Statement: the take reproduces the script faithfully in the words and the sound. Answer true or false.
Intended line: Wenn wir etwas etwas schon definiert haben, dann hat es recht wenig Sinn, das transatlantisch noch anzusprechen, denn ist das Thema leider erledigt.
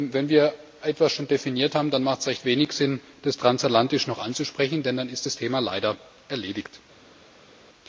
false